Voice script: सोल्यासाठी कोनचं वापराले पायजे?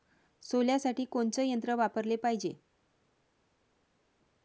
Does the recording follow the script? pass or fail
fail